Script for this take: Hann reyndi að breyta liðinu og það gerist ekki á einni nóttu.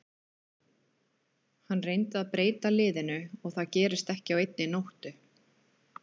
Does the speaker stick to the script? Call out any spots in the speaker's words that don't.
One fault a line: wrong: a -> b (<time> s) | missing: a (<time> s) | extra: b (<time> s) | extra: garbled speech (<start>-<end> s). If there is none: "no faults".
no faults